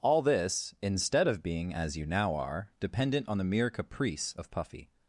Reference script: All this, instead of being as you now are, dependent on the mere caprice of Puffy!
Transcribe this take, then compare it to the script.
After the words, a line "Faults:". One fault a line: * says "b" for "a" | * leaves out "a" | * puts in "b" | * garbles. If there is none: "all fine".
All this, instead of being as you now are, dependent on the mere caprice of Puffy!
Faults:
all fine